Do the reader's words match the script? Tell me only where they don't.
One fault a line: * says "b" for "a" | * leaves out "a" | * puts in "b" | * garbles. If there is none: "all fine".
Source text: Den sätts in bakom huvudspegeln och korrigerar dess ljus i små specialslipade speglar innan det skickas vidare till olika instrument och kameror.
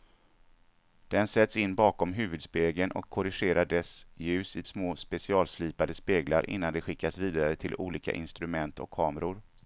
all fine